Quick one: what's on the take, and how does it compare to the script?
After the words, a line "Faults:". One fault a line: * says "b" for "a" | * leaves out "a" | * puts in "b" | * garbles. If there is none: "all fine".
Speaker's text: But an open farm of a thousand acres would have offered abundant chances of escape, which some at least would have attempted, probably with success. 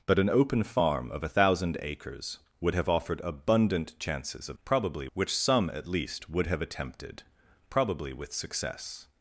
But an open farm of a thousand acres would have offered abundant chances of probably, which some at least would have attempted, probably with success.
Faults:
* says "probably" for "escape"